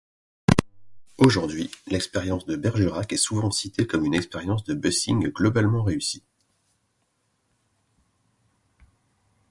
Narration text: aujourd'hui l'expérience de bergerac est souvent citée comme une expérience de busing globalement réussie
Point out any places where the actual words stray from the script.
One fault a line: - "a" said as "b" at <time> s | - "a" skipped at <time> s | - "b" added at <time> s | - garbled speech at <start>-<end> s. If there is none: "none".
none